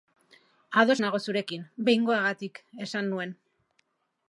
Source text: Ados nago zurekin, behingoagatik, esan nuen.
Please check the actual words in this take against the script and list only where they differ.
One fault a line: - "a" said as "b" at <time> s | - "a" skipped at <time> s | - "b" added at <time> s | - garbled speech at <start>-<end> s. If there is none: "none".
none